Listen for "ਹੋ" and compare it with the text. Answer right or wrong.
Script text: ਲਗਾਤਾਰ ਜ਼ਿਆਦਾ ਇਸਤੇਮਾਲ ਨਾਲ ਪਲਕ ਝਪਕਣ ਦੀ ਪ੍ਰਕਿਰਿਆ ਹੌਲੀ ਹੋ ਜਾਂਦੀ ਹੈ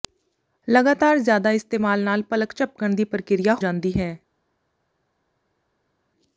wrong